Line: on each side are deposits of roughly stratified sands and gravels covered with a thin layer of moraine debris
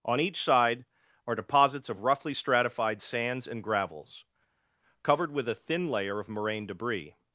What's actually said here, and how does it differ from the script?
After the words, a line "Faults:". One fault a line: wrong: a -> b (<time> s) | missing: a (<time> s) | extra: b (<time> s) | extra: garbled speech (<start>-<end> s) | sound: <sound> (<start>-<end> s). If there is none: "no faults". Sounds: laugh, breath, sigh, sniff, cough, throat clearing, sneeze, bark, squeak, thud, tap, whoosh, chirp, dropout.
on each side are deposits of roughly stratified sands and gravels covered with a thin layer of moraine debris
Faults:
no faults